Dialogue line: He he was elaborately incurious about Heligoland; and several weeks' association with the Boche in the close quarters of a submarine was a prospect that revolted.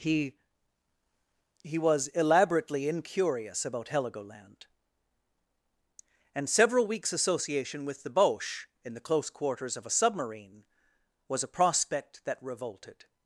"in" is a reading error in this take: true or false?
false